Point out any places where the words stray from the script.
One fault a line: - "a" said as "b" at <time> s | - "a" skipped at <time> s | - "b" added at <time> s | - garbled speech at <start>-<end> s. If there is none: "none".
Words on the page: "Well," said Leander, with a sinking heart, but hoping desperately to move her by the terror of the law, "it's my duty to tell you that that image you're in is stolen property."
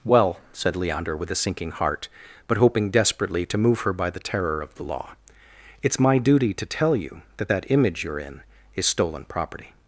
none